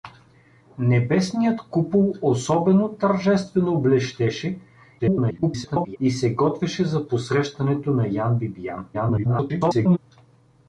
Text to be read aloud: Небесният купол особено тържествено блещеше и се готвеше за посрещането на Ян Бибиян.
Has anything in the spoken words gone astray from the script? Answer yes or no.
yes